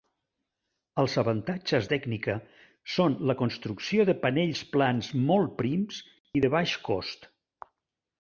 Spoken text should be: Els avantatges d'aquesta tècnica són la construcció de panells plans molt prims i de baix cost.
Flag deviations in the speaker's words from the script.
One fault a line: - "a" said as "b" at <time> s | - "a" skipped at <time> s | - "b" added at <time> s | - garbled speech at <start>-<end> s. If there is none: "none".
- "d'aquesta" skipped at 1.9 s